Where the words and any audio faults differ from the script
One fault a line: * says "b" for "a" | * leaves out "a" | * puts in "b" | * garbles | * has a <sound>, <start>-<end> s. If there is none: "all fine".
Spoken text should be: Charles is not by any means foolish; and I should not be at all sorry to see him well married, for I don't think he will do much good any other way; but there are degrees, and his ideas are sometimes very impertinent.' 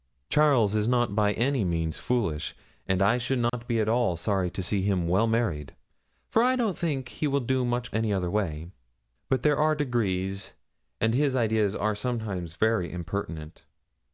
* has a dropout, 3.5-3.5 s
* leaves out "good"